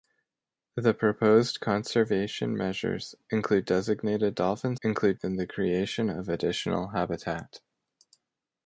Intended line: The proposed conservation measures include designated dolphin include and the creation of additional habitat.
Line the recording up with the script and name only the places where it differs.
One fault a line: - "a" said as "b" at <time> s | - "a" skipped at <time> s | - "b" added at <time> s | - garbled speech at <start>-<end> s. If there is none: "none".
none